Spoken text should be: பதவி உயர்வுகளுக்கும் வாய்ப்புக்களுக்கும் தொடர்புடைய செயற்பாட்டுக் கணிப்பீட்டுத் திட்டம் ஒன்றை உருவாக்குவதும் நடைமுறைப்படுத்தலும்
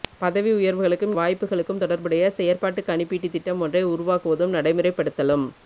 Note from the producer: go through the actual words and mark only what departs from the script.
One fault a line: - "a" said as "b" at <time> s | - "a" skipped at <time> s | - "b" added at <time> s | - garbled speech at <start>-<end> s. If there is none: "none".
none